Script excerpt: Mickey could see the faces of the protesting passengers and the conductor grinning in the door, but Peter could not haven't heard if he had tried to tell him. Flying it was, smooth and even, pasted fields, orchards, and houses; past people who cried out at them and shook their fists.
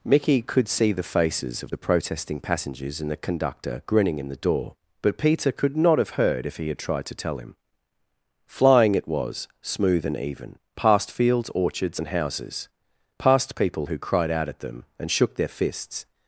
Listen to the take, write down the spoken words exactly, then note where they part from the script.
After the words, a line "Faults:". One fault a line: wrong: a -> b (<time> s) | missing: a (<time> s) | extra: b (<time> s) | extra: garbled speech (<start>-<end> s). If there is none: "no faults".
Mickey could see the faces of the protesting passengers and the conductor grinning in the door, but Peter could not have heard if he had tried to tell him. Flying it was, smooth and even, past fields, orchards, and houses; past people who cried out at them and shook their fists.
Faults:
wrong: haven't -> have (6.0 s)
wrong: pasted -> past (10.8 s)